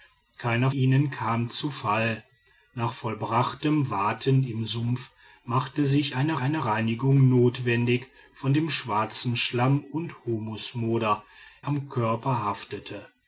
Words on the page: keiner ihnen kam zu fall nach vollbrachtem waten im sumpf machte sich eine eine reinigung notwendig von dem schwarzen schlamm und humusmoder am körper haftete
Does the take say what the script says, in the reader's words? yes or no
yes